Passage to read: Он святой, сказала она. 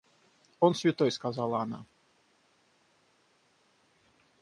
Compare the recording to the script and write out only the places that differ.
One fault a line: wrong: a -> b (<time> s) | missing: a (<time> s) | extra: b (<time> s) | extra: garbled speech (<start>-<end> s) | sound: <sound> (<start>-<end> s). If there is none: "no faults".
no faults